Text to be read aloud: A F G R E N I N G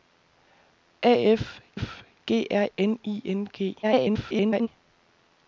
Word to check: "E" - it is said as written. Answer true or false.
false